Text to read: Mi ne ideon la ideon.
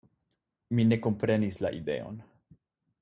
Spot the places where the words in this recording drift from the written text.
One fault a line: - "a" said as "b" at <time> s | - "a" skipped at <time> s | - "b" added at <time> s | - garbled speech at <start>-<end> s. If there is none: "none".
- "ideon" said as "komprenis" at 1.1 s